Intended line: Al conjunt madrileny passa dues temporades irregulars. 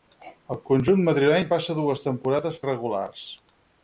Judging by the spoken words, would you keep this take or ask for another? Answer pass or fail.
pass